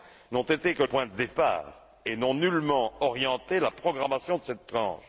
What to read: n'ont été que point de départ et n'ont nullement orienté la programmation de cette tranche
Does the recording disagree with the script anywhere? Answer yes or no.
no